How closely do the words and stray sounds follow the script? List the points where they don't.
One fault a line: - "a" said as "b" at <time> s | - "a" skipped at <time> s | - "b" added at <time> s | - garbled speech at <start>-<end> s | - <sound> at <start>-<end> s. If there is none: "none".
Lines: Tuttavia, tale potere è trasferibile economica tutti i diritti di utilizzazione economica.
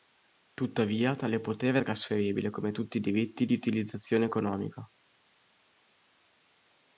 - "economica" said as "come" at 2.5 s